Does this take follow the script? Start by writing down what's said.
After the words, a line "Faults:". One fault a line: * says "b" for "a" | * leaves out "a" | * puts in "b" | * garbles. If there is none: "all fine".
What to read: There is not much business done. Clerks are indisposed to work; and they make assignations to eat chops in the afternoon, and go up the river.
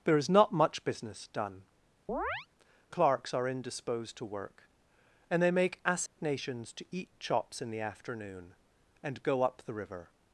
There is not much business done. Clerks are indisposed to work; and they make assignations to eat chops in the afternoon, and go up the river.
Faults:
all fine